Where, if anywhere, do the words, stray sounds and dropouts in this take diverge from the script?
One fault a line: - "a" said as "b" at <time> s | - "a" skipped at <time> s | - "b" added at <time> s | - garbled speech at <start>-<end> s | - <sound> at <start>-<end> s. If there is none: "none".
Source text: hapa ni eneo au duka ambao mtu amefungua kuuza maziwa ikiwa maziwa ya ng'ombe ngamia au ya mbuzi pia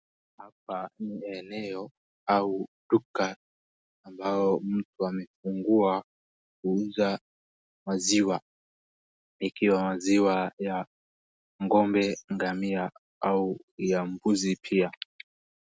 none